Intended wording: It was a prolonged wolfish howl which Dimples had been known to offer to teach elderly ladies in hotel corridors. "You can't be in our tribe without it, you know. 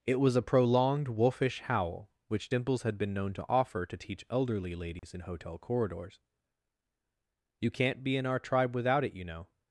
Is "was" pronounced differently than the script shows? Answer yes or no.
no